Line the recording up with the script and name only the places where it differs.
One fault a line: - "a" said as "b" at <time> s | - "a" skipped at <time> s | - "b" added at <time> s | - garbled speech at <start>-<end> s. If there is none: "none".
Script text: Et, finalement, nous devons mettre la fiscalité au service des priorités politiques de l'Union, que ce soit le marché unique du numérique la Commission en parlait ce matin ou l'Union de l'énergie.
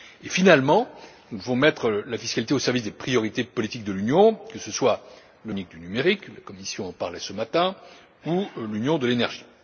- "marché" skipped at 5.5 s